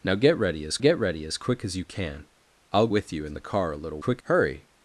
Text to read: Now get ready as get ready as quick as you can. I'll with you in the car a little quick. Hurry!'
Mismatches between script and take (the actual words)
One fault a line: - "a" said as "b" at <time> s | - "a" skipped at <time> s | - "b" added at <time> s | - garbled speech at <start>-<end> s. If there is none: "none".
none